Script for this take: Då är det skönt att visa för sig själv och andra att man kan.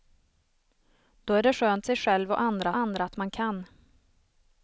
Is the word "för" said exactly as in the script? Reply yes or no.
no